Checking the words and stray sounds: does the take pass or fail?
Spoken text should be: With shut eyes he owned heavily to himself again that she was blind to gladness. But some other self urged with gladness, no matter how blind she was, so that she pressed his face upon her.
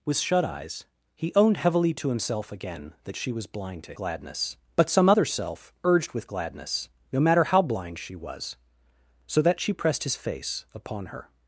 pass